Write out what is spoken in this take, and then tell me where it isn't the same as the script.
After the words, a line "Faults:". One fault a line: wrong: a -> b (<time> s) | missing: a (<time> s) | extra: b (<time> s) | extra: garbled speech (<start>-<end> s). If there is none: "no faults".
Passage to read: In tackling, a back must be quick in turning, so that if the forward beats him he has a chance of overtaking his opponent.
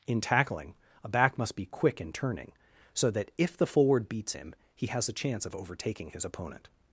In tackling, a back must be quick in turning, so that if the forward beats him he has a chance of overtaking his opponent.
Faults:
no faults